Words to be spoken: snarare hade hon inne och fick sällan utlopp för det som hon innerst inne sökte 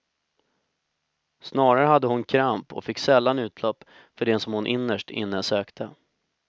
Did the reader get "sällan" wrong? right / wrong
right